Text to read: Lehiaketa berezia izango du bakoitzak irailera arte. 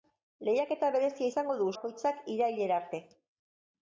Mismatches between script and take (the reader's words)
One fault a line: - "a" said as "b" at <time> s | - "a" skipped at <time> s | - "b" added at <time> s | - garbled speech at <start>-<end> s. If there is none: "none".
none